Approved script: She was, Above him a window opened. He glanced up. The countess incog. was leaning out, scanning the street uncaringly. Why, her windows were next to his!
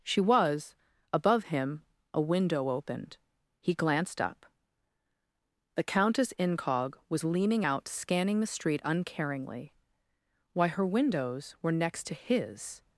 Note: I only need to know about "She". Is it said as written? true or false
true